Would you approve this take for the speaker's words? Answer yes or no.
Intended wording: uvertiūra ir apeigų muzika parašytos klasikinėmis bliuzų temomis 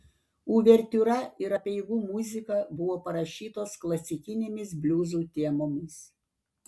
no